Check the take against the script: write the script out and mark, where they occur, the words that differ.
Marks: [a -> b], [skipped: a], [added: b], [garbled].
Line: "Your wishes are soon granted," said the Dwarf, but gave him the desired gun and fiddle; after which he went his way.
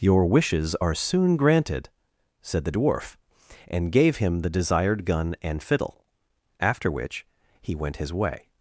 "Your wishes are soon granted," said the Dwarf, [but -> and] gave him the desired gun and fiddle; after which he went his way.